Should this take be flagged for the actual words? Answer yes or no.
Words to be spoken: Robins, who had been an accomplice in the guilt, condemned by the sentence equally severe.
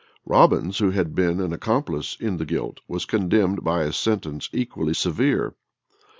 yes